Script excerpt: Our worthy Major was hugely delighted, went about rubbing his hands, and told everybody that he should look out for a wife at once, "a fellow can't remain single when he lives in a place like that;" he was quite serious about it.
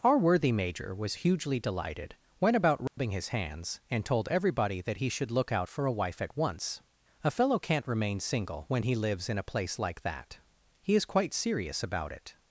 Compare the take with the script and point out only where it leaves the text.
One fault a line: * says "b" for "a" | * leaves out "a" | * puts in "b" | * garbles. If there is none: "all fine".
* says "is" for "was"